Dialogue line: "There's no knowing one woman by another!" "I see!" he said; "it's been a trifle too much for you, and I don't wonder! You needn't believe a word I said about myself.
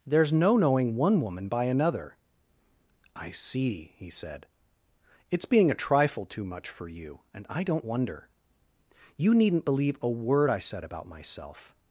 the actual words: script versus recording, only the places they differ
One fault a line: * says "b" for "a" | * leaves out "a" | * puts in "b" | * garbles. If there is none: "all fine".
* says "being" for "been"